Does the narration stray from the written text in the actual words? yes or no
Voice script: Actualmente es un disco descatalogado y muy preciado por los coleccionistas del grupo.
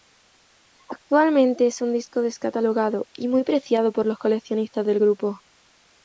no